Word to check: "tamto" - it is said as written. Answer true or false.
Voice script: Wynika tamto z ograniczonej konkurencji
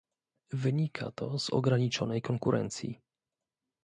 false